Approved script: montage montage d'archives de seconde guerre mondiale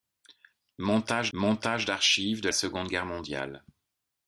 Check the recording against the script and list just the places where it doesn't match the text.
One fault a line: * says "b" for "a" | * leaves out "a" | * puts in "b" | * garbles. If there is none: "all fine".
all fine